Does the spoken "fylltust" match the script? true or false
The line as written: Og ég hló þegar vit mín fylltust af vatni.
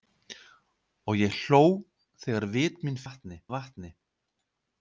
false